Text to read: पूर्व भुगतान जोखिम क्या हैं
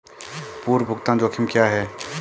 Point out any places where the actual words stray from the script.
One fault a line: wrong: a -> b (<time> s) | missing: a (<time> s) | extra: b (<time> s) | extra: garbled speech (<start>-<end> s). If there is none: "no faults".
no faults